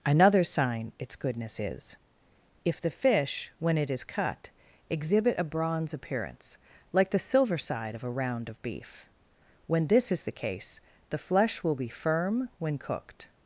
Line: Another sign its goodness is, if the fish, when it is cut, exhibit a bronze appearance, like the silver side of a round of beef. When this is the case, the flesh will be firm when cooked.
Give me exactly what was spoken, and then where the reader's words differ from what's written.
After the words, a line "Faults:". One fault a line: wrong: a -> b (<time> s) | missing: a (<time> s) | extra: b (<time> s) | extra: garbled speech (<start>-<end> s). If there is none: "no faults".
Another sign its goodness is, if the fish, when it is cut, exhibit a bronze appearance, like the silver side of a round of beef. When this is the case, the flesh will be firm when cooked.
Faults:
no faults